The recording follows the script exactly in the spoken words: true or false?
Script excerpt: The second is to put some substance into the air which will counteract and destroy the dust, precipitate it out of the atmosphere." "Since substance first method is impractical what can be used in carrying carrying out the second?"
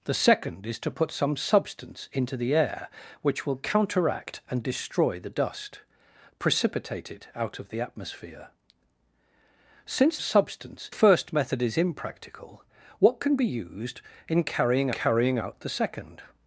true